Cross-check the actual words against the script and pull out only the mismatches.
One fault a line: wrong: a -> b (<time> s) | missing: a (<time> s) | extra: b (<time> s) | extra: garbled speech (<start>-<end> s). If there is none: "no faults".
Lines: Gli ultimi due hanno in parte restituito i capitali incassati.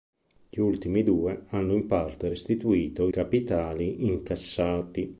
missing: i (3.1 s)